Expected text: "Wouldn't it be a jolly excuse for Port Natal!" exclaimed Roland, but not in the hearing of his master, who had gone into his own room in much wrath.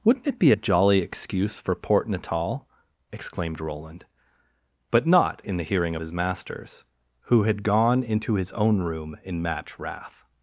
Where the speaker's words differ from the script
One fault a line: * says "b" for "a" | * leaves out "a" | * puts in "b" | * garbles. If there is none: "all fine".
* says "masters" for "master"
* says "match" for "much"